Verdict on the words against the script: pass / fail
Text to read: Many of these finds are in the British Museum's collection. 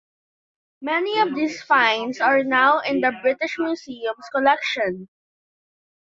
fail